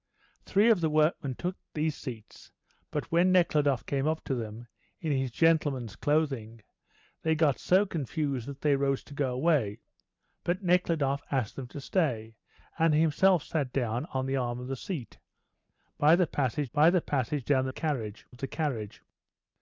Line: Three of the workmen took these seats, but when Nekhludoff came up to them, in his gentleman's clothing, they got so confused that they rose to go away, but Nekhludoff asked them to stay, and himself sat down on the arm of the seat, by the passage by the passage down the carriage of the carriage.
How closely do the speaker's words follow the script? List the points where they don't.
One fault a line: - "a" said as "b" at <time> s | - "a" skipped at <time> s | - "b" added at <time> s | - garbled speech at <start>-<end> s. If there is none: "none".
none